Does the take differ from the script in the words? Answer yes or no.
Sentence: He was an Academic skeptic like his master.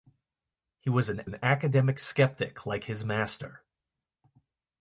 yes